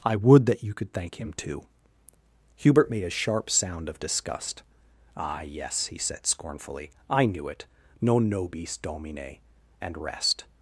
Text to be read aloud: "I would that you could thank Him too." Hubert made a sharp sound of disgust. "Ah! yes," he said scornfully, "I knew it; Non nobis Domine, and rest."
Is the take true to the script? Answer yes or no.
yes